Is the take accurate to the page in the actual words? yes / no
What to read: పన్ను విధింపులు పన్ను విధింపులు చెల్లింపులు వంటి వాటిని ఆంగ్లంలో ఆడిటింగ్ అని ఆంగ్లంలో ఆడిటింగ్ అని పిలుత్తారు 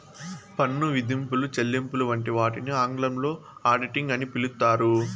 no